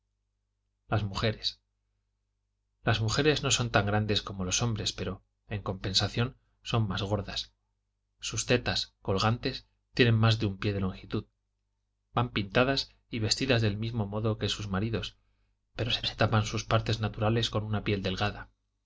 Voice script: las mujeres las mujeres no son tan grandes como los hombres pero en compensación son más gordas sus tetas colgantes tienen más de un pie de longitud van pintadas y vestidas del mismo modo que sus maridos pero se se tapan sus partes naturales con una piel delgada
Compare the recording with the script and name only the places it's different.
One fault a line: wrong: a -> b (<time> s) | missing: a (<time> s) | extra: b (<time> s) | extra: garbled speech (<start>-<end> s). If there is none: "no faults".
no faults